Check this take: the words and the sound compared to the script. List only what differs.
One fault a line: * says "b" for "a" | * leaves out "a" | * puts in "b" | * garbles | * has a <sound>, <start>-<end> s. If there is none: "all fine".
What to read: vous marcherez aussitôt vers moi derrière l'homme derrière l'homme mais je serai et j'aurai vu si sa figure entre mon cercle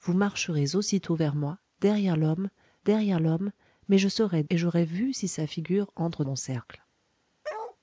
* has a bark, 7.4-7.8 s